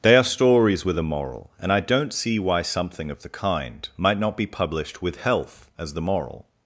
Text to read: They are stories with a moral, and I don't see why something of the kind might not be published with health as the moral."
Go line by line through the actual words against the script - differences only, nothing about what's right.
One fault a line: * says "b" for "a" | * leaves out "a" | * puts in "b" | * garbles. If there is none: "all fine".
all fine